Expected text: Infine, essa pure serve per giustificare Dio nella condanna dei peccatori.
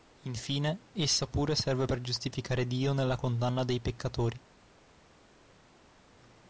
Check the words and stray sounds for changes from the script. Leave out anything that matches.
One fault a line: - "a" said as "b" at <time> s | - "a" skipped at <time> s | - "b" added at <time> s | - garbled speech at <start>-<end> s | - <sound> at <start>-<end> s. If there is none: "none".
none